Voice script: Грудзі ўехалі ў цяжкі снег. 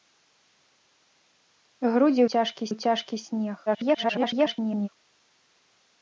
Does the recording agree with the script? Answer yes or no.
no